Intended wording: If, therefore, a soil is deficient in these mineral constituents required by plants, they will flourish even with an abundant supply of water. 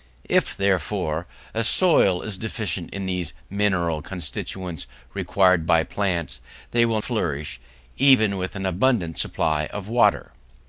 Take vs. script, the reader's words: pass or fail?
pass